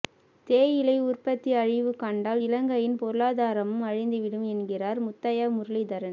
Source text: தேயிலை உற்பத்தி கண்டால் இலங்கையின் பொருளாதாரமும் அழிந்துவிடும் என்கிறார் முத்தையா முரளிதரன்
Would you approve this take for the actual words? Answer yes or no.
no